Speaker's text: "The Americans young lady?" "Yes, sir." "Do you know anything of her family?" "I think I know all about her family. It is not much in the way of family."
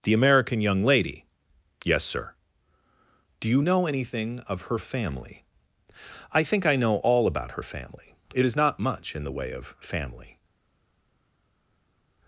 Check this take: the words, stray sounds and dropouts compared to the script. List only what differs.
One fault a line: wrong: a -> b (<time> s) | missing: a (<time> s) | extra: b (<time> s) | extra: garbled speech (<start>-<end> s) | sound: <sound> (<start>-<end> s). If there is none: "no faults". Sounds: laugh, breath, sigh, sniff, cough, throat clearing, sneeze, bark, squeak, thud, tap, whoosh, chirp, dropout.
wrong: Americans -> American (0.1 s)